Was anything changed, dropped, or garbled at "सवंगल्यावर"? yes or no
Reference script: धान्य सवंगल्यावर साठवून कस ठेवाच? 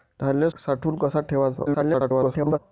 yes